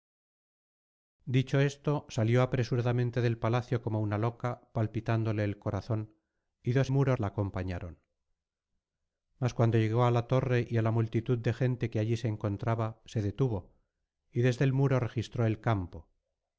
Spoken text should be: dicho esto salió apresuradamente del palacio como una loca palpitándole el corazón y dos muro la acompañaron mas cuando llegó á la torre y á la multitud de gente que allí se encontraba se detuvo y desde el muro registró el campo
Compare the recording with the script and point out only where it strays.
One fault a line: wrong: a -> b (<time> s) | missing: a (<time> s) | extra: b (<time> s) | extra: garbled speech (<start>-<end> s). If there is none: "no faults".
no faults